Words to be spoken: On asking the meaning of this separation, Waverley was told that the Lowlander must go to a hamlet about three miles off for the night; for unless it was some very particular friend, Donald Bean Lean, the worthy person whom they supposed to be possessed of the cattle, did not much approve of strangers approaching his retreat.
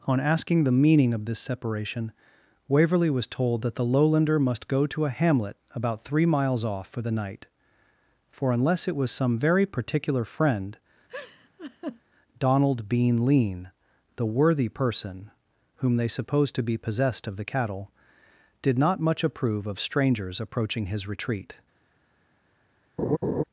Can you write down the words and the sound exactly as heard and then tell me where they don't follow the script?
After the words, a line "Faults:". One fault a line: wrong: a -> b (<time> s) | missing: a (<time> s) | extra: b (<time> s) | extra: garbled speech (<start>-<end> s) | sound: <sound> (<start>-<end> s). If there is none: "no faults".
On asking the meaning of this separation, Waverley was told that the Lowlander must go to a hamlet about three miles off for the night; for unless it was some very particular friend, Donald Bean Lean, the worthy person whom they supposed to be possessed of the cattle, did not much approve of strangers approaching his retreat.
Faults:
sound: laugh (11.1-12.0 s)
sound: laugh (23.0-23.4 s)